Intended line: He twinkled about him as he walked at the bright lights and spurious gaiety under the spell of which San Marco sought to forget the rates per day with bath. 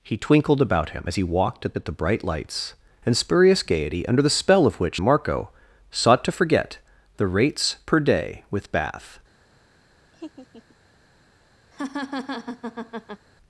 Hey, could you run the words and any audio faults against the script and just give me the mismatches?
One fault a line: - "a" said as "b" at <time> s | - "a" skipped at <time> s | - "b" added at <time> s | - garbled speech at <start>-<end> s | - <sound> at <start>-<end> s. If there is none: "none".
- "at" added at 1.8 s
- "San" skipped at 5.0 s
- laugh at 10.1-10.8 s
- laugh at 11.7-13.3 s